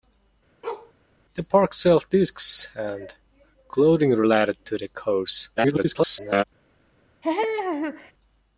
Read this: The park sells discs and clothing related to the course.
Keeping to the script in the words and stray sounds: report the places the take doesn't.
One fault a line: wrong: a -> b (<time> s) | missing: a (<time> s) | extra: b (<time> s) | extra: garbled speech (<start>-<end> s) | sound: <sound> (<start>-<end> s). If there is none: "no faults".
sound: bark (0.6-0.9 s)
extra: garbled speech (5.6-6.4 s)
sound: laugh (7.2-8.1 s)